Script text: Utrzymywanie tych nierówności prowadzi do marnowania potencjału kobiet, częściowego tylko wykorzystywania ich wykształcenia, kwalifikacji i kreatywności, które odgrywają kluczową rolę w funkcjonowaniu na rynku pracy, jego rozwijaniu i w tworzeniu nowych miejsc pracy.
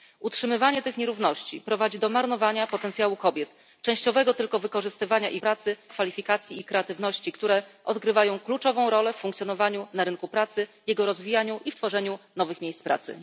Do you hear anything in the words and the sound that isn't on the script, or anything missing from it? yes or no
yes